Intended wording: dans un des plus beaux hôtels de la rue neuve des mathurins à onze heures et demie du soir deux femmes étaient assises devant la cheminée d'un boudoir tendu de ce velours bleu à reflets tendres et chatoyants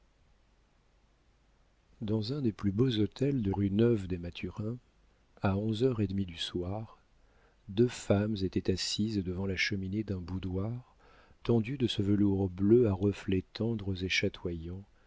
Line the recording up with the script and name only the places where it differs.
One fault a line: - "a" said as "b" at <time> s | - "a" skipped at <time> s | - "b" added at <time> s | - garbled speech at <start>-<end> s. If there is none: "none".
- "la" skipped at 3.5 s